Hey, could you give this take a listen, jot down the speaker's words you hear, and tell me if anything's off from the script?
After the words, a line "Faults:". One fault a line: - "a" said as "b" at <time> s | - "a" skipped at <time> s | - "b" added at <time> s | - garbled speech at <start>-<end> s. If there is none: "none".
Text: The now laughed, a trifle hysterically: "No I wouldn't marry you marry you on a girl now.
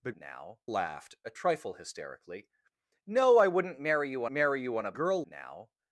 The now laughed, a trifle hysterically: "No I wouldn't marry you marry you on a girl now.
Faults:
none